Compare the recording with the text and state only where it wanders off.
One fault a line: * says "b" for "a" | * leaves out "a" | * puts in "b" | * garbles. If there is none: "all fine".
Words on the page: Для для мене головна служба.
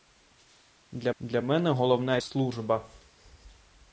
all fine